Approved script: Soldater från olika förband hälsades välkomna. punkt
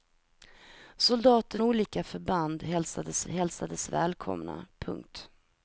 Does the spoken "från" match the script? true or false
false